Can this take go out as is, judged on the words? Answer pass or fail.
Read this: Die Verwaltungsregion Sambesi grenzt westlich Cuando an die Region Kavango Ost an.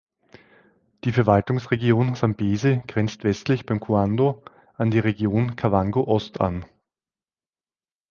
fail